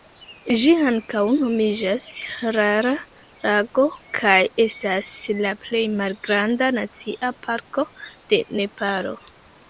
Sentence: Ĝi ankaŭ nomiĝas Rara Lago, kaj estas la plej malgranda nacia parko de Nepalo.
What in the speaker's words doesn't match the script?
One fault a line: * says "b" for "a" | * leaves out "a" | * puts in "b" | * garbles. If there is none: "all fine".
all fine